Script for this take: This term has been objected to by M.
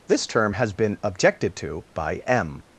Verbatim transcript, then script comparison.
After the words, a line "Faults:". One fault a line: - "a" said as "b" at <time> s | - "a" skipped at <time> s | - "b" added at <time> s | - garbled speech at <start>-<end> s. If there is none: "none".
This term has been objected to by M.
Faults:
none